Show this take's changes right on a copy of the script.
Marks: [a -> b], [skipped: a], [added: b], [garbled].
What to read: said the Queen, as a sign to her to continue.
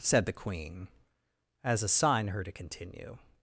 said the Queen, as a sign [skipped: to] her to continue.